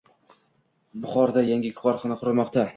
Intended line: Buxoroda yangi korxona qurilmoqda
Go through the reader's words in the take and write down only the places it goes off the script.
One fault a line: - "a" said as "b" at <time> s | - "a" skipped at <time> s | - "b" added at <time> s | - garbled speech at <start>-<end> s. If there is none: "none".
none